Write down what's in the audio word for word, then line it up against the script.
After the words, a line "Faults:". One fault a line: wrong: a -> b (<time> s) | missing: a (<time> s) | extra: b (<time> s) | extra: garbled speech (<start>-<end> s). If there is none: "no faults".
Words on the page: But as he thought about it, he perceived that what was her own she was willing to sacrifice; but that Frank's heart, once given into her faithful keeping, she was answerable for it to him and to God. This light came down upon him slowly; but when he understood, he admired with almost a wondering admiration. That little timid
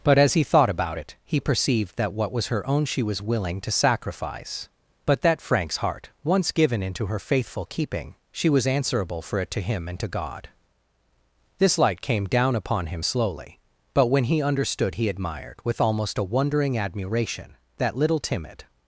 But as he thought about it, he perceived that what was her own she was willing to sacrifice; but that Frank's heart, once given into her faithful keeping, she was answerable for it to him and to God. This light came down upon him slowly; but when he understood, he admired with almost a wondering admiration. That little timid
Faults:
no faults